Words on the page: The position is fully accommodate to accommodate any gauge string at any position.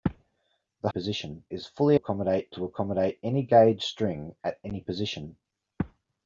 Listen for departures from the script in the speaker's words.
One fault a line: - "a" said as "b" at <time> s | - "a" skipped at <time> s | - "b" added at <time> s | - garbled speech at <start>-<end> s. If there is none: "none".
none